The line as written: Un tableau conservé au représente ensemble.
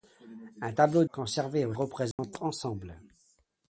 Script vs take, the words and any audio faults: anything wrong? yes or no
yes